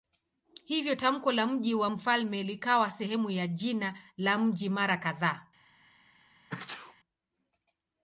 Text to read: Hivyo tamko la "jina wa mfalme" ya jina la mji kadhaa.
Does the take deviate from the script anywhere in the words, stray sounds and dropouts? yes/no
yes